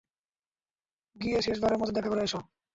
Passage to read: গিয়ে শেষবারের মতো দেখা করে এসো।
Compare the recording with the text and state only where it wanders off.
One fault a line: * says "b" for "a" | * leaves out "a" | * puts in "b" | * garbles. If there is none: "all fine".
all fine